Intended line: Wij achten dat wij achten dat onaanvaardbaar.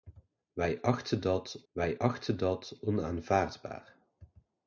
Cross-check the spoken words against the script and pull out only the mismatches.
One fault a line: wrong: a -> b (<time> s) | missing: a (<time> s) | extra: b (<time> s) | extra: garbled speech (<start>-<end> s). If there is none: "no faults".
no faults